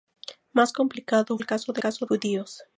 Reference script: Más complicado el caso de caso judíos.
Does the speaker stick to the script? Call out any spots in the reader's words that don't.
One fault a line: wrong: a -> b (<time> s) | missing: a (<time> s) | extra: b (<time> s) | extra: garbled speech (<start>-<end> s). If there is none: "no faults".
no faults